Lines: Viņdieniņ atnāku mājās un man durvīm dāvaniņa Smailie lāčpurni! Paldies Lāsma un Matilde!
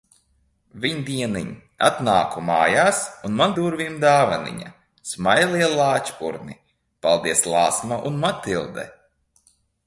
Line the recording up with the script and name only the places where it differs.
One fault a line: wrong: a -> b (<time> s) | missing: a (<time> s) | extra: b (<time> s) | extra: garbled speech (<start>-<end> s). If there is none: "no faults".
no faults